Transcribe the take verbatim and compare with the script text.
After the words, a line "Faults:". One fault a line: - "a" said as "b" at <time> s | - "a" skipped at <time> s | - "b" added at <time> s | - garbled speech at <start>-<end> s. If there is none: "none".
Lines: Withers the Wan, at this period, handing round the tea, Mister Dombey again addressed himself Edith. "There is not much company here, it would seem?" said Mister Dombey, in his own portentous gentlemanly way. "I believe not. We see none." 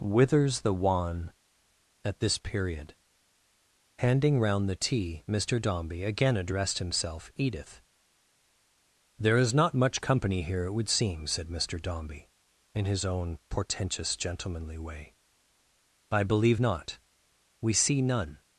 Withers the Wan, at this period, handing round the tea, Mister Dombey again addressed himself Edith. "There is not much company here, it would seem?" said Mister Dombey, in his own portentous gentlemanly way. "I believe not. We see none."
Faults:
none